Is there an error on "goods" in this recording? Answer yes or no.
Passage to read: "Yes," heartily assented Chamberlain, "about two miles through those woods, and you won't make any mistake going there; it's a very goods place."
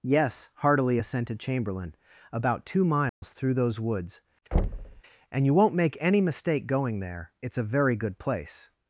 yes